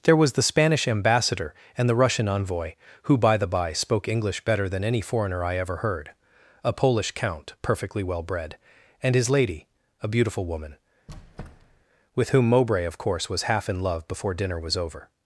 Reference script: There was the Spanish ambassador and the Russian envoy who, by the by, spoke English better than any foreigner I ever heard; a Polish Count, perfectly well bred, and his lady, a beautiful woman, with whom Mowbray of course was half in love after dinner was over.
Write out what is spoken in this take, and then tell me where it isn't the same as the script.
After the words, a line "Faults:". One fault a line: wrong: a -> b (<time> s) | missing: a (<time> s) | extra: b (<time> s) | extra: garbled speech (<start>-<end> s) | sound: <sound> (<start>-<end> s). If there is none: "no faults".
There was the Spanish ambassador and the Russian envoy who, by the by, spoke English better than any foreigner I ever heard; a Polish Count, perfectly well bred, and his lady, a beautiful woman, with whom Mowbray of course was half in love before dinner was over.
Faults:
sound: squeak (11.1-11.8 s)
wrong: after -> before (14.1 s)